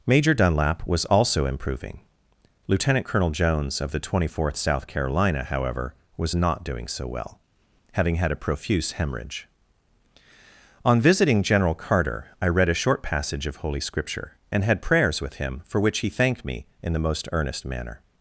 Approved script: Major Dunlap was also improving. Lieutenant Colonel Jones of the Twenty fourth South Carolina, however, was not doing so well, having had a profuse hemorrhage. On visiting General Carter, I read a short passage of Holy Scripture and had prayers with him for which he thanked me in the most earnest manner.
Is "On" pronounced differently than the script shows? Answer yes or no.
no